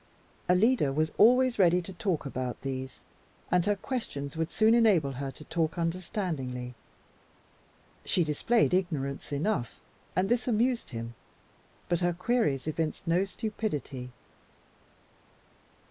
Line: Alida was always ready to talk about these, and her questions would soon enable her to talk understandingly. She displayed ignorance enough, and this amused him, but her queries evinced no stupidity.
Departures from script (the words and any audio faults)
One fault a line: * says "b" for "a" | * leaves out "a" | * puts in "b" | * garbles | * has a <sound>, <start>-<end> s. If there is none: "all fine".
all fine